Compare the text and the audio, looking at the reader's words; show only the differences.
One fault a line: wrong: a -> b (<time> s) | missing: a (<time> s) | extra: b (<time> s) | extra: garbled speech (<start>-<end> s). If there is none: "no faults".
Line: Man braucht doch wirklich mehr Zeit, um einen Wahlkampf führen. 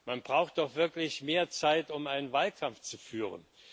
extra: zu (2.8 s)